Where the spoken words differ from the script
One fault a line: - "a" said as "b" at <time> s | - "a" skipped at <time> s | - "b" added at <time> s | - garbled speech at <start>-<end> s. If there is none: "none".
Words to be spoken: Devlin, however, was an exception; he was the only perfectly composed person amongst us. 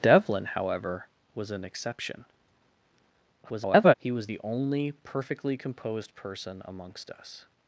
- garbled speech at 3.4-3.9 s